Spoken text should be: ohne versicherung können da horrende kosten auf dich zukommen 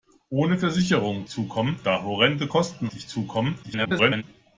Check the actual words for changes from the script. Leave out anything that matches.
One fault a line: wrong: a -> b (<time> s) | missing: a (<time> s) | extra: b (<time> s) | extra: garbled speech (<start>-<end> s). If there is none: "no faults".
wrong: können -> zukommen (1.3 s)
missing: auf (2.9 s)
extra: garbled speech (3.6-4.2 s)